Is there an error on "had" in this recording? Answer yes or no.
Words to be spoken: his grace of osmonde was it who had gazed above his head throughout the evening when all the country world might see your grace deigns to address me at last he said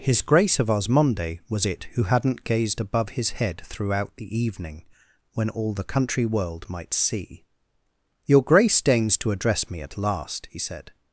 yes